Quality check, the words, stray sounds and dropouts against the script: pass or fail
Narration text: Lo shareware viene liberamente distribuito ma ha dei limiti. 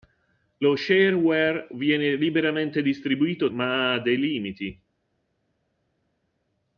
pass